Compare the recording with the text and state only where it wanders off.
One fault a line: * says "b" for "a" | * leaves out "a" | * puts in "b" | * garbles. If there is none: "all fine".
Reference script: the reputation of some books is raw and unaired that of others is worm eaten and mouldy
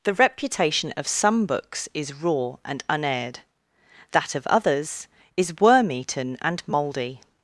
all fine